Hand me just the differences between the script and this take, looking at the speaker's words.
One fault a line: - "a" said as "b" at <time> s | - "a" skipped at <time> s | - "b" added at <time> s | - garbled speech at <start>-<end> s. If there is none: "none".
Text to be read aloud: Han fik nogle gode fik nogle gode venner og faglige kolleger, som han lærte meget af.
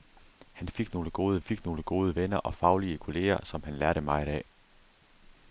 none